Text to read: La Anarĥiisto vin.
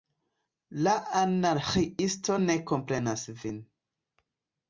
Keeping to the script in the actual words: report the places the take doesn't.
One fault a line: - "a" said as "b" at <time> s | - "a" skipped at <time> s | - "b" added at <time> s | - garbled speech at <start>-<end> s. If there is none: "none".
- "ne komprenas" added at 2.4 s